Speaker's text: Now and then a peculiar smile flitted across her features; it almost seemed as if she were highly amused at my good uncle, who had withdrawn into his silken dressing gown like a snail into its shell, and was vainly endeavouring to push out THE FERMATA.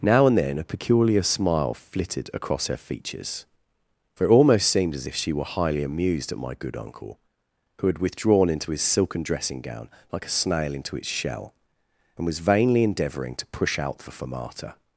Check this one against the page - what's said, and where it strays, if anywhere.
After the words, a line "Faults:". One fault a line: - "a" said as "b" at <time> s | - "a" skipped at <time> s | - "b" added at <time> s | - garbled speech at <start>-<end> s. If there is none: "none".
Now and then a peculiar smile flitted across her features; for it almost seemed as if she were highly amused at my good uncle, who had withdrawn into his silken dressing gown like a snail into its shell, and was vainly endeavouring to push out THE FERMATA.
Faults:
- "for" added at 4.2 s